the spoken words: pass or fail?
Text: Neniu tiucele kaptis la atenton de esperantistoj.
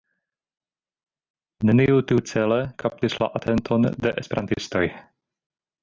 pass